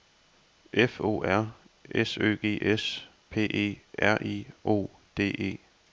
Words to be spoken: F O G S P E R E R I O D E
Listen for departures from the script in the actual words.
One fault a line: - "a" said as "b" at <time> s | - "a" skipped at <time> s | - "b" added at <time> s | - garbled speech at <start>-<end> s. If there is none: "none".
- "R S Ø" added at 1.2 s
- "E R" skipped at 4.2 s